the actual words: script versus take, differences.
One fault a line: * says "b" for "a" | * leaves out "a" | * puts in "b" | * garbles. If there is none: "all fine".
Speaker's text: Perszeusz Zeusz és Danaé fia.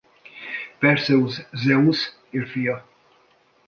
* leaves out "Danaé"